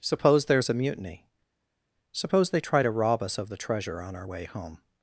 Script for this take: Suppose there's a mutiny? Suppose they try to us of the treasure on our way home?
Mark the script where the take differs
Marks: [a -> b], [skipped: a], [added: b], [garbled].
Suppose there's a mutiny? Suppose they try to [added: rob] us of the treasure on our way home?